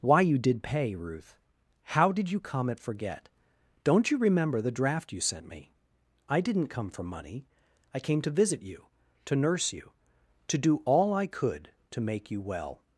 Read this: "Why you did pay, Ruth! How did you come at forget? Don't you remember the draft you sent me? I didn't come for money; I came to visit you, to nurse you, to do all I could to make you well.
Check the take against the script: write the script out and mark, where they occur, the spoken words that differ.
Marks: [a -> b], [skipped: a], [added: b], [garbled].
"Why you did pay, Ruth! How did you come at forget? Don't you remember the draft you sent me? I didn't come for money; I came to visit you, to nurse you, to do all I could to make you well.